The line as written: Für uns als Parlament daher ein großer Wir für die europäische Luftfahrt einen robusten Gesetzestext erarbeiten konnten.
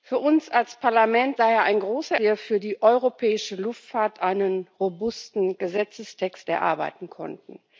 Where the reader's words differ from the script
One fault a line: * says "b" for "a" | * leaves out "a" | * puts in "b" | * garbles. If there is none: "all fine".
all fine